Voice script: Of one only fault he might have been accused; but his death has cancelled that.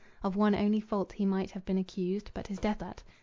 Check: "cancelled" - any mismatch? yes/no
yes